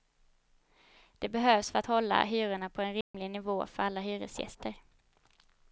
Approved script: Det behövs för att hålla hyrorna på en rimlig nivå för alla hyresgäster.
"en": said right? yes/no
yes